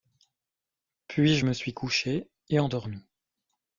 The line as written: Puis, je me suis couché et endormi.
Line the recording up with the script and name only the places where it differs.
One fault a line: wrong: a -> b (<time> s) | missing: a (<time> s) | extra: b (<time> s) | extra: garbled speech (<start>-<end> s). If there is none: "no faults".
no faults